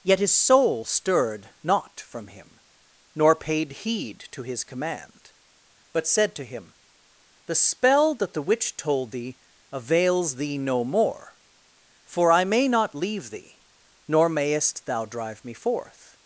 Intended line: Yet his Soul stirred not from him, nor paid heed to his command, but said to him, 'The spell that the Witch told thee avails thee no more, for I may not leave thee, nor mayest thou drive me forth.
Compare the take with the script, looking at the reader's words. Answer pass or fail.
pass